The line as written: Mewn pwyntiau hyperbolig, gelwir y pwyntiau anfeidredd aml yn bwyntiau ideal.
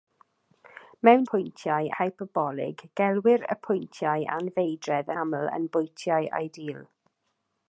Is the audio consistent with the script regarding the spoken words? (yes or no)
yes